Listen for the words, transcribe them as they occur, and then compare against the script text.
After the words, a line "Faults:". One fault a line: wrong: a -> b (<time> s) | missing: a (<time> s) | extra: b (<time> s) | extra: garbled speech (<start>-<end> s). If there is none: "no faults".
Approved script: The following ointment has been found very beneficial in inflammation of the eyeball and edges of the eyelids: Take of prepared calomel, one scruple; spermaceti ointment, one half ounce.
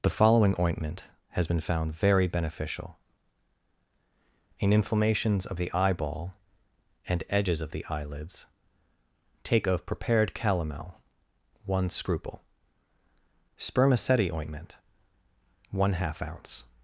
The following ointment has been found very beneficial in inflammations of the eyeball and edges of the eyelids: Take of prepared calomel, one scruple; spermaceti ointment, one half ounce.
Faults:
wrong: inflammation -> inflammations (4.7 s)